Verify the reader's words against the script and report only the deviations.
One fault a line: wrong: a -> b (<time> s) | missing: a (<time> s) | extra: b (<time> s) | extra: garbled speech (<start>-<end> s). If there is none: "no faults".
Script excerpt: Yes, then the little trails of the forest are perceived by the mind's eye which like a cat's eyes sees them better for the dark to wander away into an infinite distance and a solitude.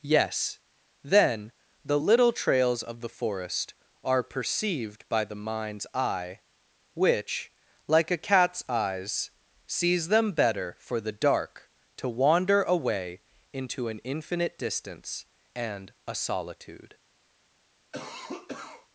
no faults